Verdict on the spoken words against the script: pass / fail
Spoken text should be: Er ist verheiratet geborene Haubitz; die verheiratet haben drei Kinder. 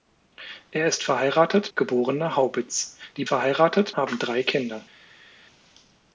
pass